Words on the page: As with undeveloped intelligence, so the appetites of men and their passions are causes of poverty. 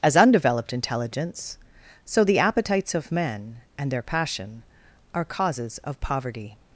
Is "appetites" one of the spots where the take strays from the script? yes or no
no